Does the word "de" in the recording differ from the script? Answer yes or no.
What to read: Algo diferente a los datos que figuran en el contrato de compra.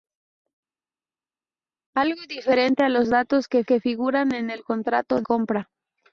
yes